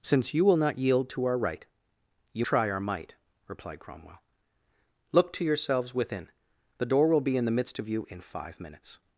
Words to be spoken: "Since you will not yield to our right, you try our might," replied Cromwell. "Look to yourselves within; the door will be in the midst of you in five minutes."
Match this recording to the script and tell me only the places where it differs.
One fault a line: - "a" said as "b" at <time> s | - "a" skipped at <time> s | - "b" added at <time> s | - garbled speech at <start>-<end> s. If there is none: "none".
none